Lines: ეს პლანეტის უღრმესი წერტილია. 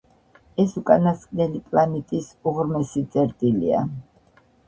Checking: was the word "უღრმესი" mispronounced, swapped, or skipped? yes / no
no